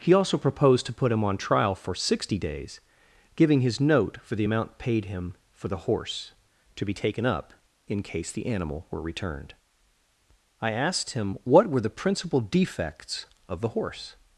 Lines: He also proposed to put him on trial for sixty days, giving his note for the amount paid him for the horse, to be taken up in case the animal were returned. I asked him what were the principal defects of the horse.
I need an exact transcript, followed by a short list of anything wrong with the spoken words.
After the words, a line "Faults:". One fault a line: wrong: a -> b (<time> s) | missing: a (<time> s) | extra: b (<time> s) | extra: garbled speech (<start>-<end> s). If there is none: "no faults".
He also proposed to put him on trial for sixty days, giving his note for the amount paid him for the horse, to be taken up in case the animal were returned. I asked him what were the principal defects of the horse.
Faults:
no faults